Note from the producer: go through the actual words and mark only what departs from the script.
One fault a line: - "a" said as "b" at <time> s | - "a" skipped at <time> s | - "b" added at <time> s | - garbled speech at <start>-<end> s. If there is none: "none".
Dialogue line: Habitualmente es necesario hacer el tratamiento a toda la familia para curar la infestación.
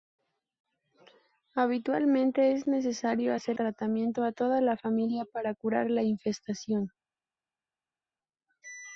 - "el" skipped at 3.6 s